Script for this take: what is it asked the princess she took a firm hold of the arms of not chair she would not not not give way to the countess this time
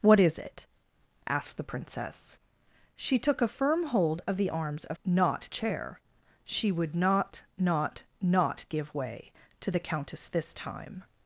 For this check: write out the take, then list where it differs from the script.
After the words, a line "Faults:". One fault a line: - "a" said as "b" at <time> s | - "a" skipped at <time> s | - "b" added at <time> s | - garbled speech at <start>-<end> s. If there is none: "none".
what is it asked the princess she took a firm hold of the arms of not chair she would not not not give way to the countess this time
Faults:
none